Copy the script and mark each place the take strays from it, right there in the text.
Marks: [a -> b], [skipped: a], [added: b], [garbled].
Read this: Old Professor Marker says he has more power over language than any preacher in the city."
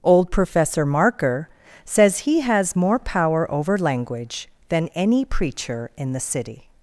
Old Professor Marker says he has more power over language than any preacher in the city."